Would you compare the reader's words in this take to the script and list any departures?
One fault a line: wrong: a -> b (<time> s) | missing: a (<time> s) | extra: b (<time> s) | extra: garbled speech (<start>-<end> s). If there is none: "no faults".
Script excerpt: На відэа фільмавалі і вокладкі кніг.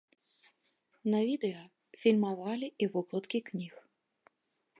no faults